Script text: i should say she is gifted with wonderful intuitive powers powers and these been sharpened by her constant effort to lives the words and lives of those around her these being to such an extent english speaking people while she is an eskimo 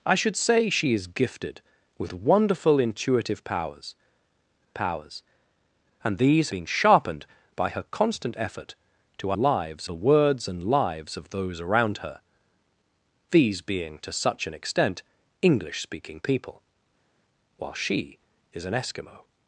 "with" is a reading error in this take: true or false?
false